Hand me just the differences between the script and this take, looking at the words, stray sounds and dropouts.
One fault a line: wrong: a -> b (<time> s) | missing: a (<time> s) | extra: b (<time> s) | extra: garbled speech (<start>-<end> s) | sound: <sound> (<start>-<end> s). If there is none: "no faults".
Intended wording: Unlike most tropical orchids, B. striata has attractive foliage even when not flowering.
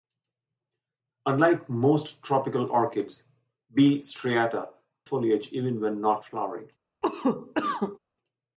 missing: has attractive (4.7 s)
sound: cough (7.0-8.0 s)